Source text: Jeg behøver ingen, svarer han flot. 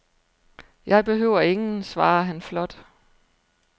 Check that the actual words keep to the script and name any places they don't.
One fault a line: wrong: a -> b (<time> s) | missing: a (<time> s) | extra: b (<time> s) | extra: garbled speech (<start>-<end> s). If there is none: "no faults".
no faults